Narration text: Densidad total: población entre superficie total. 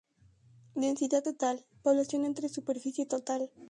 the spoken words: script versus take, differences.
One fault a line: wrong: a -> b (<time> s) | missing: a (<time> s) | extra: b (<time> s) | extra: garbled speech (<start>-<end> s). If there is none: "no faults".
no faults